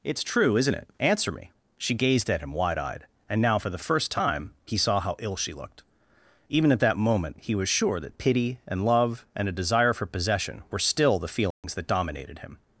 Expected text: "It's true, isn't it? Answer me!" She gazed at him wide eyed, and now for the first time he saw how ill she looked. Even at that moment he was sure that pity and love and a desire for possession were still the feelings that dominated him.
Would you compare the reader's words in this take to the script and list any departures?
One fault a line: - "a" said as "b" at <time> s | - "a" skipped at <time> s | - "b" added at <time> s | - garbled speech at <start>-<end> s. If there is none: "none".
none